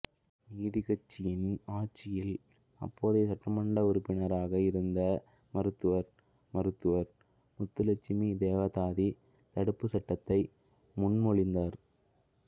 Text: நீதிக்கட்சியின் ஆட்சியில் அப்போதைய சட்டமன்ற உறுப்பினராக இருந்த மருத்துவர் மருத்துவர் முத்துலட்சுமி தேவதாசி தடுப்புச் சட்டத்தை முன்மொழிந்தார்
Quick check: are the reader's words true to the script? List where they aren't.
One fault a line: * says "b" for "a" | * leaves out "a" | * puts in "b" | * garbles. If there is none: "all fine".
all fine